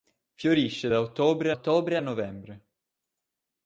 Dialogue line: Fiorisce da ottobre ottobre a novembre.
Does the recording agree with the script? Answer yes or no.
yes